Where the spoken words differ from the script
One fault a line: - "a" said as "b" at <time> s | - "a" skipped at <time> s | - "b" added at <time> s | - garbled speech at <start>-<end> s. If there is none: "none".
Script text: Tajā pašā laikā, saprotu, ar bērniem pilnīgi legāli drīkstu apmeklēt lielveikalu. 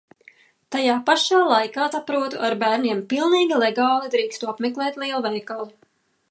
none